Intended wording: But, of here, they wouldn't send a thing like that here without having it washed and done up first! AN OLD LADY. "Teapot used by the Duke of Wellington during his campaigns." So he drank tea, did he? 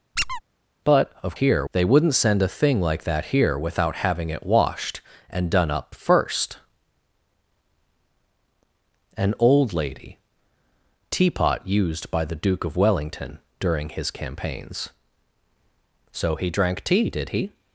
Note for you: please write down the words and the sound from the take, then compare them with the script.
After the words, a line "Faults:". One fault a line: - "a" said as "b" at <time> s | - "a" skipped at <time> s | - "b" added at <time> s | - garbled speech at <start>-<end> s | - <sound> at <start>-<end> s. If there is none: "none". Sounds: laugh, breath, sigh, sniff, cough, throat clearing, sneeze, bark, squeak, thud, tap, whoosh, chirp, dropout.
But, of here, they wouldn't send a thing like that here without having it washed and done up first! AN OLD LADY. "Teapot used by the Duke of Wellington during his campaigns." So he drank tea, did he?
Faults:
- squeak at 0.2-0.4 s